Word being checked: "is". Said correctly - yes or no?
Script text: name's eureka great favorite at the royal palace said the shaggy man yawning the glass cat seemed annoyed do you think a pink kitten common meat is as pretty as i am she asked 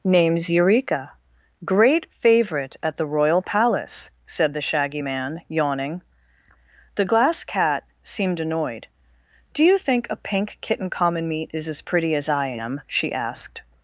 yes